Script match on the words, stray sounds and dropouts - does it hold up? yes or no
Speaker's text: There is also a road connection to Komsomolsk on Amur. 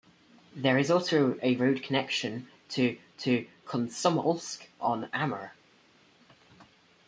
no